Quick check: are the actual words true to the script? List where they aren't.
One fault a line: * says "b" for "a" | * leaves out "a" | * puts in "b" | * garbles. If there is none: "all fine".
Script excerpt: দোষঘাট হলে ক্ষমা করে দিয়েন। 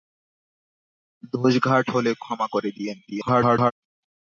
* garbles